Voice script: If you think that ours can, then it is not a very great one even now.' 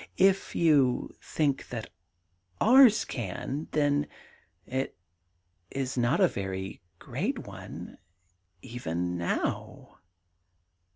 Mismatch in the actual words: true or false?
false